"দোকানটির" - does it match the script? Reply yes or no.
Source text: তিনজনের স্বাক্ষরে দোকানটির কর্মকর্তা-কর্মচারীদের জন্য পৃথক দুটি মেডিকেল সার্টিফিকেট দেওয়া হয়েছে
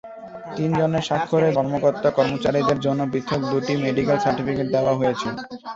no